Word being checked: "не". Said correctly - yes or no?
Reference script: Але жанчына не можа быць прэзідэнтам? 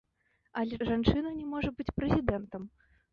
yes